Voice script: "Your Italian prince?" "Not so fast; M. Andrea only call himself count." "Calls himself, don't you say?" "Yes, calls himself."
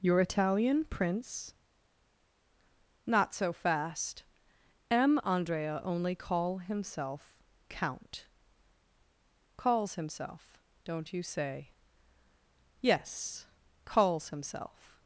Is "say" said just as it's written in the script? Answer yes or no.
yes